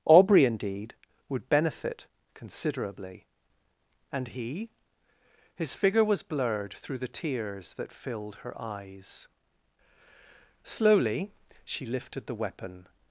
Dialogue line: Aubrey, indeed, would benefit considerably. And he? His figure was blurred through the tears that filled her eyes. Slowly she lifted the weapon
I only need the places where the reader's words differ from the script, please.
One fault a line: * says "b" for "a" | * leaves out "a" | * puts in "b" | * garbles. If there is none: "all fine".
all fine